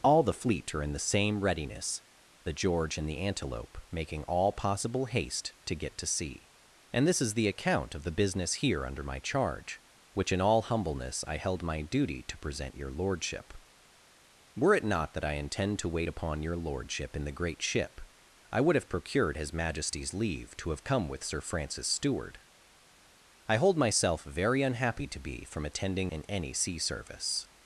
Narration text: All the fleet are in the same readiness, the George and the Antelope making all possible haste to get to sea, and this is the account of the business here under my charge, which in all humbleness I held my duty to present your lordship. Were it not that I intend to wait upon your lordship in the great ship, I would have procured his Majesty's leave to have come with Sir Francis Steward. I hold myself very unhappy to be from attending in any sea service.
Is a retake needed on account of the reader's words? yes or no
no